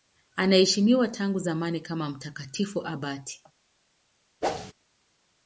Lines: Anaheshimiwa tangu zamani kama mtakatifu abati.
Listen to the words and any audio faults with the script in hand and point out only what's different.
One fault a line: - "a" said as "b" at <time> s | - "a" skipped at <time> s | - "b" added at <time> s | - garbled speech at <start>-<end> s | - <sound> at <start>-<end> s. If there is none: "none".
- whoosh at 4.4-4.7 s